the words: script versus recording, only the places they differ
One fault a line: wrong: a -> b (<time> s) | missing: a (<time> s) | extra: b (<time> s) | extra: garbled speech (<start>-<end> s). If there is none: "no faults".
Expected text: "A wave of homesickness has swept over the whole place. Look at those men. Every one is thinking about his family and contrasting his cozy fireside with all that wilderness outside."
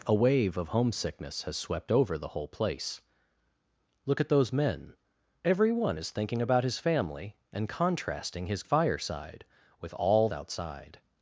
missing: cozy (8.6 s)
missing: that wilderness (10.3 s)